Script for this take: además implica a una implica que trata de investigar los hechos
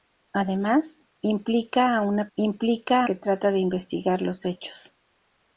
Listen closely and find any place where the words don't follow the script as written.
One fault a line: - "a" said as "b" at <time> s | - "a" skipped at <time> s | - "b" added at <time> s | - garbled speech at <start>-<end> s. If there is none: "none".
none